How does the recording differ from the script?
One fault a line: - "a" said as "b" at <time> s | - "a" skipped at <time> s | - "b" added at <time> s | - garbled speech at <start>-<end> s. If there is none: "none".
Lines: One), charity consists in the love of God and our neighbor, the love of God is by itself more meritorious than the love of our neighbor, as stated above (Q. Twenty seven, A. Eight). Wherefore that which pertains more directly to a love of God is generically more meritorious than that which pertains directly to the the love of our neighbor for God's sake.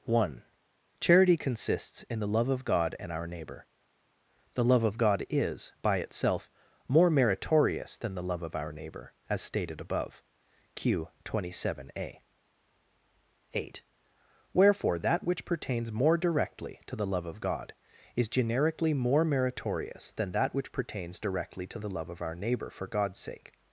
- "a" said as "the" at 16.9 s
- "the" skipped at 21.9 s